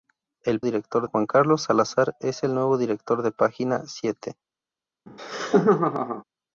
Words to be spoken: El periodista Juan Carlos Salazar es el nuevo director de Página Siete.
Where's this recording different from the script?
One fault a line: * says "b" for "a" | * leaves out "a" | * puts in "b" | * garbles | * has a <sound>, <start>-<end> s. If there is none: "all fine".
* says "director" for "periodista"
* has a laugh, 5.1-6.2 s